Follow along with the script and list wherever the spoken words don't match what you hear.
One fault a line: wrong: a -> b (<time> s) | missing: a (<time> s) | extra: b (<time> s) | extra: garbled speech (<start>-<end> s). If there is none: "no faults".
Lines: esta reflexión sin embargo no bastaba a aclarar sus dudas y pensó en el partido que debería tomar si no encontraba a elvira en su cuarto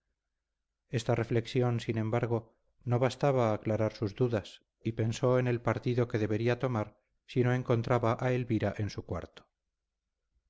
no faults